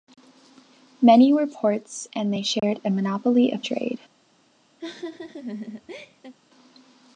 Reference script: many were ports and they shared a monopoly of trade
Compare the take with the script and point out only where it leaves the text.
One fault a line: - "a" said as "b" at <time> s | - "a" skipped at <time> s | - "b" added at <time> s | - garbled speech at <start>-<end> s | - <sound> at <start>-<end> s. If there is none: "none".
- dropout at 2.6-2.6 s
- laugh at 4.8-6.3 s